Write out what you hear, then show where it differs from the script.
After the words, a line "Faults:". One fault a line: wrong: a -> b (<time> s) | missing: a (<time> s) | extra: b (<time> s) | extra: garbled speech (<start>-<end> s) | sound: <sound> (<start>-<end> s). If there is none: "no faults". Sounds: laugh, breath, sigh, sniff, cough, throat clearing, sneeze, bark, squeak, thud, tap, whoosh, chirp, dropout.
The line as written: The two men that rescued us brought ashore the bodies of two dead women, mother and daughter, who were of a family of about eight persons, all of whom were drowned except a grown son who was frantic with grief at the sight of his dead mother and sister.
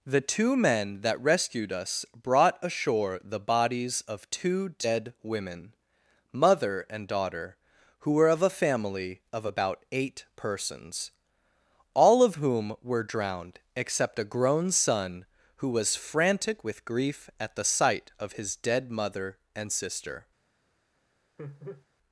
The two men that rescued us brought ashore the bodies of two dead women, mother and daughter, who were of a family of about eight persons, all of whom were drowned except a grown son who was frantic with grief at the sight of his dead mother and sister.
Faults:
sound: laugh (21.4-21.9 s)